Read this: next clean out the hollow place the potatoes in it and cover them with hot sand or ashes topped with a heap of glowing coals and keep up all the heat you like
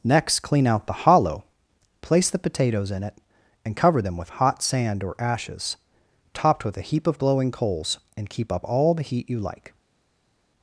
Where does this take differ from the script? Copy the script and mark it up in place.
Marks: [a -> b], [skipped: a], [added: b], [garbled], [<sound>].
next clean out the hollow place the potatoes in it and cover them with hot sand or ashes topped with a heap of glowing coals and keep up all the heat you like